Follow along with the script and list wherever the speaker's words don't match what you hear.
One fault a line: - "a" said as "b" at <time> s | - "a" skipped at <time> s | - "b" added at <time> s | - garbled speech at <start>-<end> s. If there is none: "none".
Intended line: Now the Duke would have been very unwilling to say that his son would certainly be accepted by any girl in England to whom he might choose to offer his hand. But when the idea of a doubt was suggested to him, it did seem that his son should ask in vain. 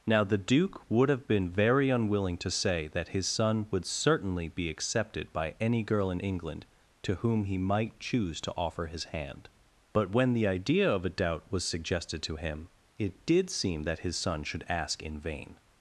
none